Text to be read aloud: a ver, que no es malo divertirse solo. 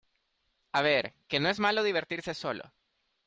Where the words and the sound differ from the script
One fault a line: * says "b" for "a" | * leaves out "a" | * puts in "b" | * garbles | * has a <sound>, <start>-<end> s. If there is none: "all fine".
all fine